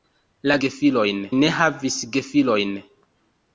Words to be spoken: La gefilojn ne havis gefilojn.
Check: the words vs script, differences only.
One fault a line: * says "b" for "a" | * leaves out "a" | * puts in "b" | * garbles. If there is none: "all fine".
all fine